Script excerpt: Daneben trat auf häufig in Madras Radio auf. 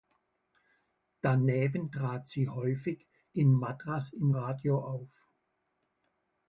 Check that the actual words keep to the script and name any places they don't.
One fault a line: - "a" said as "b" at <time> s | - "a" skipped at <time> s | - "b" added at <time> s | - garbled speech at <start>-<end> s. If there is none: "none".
- "auf" said as "sie" at 2.3 s
- "im" added at 4.1 s